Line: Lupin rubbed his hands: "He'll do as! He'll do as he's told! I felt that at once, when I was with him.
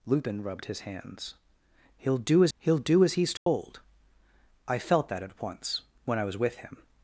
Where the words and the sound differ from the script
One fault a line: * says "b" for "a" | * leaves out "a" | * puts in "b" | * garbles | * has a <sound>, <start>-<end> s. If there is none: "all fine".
* has a dropout, 3.4-3.5 s